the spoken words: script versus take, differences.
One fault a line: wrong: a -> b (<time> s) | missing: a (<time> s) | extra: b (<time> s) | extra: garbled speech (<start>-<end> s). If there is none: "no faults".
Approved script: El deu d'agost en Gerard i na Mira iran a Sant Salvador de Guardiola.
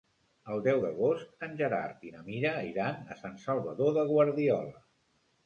no faults